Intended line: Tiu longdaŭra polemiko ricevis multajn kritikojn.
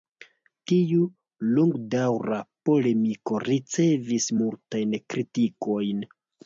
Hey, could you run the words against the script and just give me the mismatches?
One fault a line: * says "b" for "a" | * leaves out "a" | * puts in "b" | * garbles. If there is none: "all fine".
all fine